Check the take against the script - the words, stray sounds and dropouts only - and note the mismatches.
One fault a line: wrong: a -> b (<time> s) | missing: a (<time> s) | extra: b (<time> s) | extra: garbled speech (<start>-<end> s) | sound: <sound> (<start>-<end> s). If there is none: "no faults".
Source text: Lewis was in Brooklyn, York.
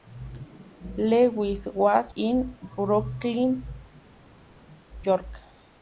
no faults